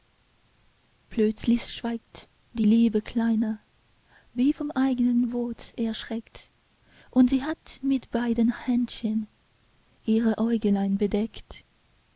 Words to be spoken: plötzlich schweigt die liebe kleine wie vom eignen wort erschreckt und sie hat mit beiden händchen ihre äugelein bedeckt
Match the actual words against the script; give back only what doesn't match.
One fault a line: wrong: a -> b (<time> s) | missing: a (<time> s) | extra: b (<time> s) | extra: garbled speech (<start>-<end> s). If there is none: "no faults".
no faults